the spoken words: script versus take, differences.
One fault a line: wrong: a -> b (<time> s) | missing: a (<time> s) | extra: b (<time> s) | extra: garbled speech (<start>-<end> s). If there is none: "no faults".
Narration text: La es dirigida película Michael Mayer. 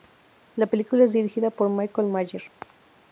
extra: película (0.6 s)
wrong: película -> por (1.5 s)